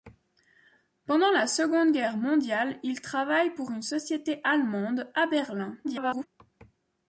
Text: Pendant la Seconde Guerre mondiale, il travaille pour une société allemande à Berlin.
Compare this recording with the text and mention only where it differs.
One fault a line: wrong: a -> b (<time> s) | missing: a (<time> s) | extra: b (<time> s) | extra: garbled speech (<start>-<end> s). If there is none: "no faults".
extra: garbled speech (5.8-6.3 s)